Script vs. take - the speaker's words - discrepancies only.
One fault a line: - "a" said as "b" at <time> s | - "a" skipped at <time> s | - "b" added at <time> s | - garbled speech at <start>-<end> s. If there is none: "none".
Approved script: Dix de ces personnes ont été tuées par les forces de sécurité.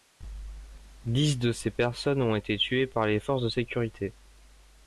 none